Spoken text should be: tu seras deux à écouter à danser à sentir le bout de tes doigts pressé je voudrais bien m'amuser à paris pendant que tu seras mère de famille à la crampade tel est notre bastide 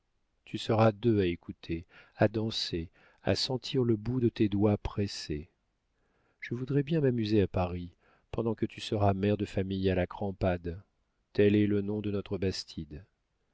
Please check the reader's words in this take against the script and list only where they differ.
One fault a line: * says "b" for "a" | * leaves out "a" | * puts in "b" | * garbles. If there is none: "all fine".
* puts in "le nom de"